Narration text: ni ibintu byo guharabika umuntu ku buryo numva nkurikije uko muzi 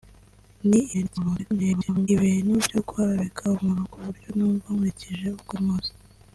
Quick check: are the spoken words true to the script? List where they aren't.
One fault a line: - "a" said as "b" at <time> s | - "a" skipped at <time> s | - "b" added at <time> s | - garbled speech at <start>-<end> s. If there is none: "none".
- garbled speech at 0.9-2.1 s